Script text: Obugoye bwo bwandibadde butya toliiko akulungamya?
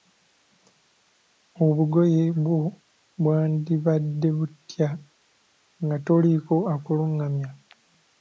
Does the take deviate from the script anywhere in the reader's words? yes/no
yes